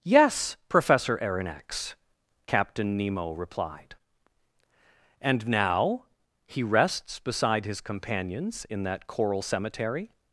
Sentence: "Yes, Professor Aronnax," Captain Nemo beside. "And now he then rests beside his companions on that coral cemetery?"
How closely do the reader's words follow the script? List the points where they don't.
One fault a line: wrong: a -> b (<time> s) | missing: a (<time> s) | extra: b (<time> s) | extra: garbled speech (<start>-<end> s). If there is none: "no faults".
wrong: beside -> replied (3.3 s)
missing: then (6.6 s)
wrong: on -> in (8.7 s)